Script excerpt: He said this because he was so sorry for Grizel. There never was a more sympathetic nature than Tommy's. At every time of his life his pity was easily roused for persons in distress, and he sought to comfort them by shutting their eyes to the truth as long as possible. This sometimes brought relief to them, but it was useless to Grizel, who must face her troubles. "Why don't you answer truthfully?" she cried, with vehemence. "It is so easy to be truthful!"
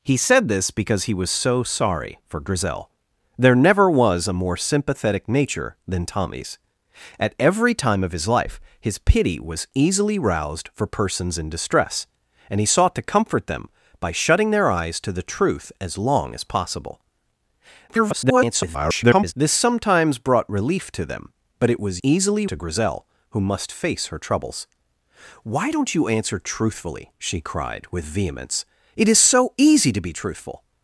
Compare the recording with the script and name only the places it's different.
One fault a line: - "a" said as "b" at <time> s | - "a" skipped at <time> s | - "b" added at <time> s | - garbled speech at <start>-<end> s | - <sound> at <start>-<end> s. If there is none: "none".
- garbled speech at 17.9-19.3 s
- "useless" said as "easily" at 22.0 s